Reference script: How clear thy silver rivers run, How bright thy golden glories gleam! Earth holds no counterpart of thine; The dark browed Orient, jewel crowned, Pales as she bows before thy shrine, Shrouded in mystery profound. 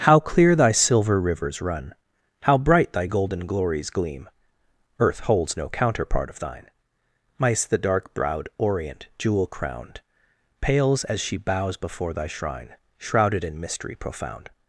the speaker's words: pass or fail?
fail